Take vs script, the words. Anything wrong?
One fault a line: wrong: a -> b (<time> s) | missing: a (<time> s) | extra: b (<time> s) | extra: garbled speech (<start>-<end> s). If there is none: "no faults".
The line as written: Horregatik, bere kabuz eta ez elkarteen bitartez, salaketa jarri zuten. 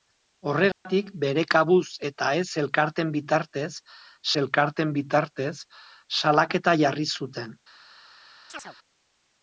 extra: elkarteen bitartez (4.4 s)